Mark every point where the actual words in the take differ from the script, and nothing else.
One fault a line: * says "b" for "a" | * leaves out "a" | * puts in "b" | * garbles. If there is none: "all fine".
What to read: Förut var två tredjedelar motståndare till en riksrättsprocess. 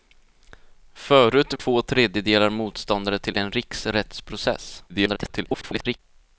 * leaves out "var"
* garbles